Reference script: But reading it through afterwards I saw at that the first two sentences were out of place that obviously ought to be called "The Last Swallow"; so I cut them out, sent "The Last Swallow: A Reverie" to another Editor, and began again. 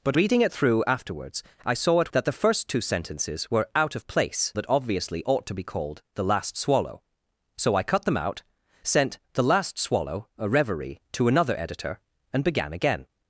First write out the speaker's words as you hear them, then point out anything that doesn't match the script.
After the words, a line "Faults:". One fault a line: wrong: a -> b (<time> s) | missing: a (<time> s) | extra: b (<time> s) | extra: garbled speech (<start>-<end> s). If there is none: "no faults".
But reading it through afterwards I saw at that the first two sentences were out of place that obviously ought to be called "The Last Swallow"; so I cut them out, sent "The Last Swallow: A Reverie" to another Editor, and began again.
Faults:
no faults